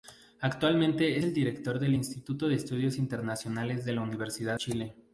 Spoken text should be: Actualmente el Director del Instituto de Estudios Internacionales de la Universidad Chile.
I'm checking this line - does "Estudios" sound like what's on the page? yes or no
yes